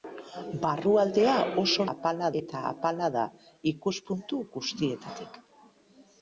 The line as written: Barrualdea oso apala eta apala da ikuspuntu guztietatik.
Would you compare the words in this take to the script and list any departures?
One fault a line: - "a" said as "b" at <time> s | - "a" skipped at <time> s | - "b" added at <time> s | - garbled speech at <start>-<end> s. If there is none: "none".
none